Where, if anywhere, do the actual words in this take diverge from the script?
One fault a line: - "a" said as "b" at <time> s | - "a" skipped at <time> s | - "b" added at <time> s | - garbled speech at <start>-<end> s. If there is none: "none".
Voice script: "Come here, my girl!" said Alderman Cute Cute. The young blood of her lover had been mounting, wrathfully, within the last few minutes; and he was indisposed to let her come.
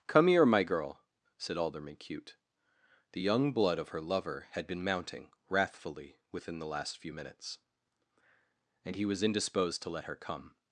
- "Cute" skipped at 2.4 s